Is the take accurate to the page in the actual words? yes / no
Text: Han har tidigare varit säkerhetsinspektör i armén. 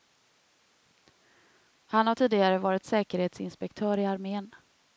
yes